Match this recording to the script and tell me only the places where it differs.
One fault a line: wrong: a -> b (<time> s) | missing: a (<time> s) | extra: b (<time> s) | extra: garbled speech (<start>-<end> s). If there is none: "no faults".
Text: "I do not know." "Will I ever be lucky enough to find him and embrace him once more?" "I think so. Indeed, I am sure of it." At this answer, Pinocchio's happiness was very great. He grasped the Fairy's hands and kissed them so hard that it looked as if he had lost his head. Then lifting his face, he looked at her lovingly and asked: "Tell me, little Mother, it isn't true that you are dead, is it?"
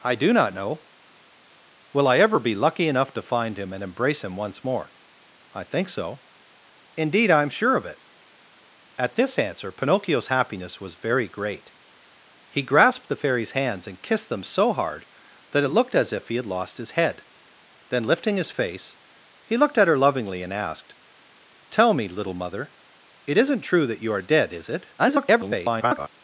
extra: garbled speech (25.0-26.1 s)